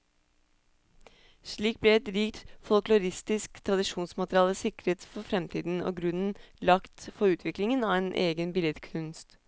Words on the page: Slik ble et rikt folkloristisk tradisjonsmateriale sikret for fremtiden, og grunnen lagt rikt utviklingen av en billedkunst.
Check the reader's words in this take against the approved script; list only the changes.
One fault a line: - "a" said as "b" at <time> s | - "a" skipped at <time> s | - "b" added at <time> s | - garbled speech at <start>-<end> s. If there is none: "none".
- "rikt" said as "for" at 7.2 s
- "egen" added at 8.3 s